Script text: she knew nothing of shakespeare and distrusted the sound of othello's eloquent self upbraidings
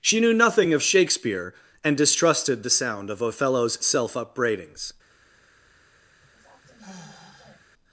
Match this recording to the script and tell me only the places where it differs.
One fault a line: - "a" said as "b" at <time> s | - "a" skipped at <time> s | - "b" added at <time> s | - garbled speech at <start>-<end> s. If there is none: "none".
- "eloquent" skipped at 3.8 s